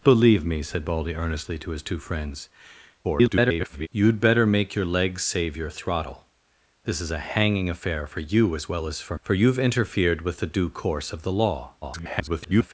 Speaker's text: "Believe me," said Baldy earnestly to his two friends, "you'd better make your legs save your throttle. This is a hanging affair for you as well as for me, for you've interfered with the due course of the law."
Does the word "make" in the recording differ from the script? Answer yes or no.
no